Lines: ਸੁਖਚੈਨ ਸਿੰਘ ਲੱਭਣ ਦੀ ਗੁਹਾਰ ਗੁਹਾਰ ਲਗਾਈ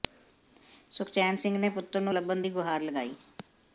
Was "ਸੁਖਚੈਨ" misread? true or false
false